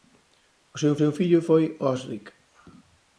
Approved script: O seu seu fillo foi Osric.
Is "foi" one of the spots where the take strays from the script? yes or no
no